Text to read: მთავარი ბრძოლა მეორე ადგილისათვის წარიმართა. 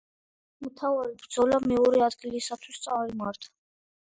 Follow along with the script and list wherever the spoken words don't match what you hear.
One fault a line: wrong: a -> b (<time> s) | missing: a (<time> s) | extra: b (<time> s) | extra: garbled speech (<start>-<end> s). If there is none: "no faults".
no faults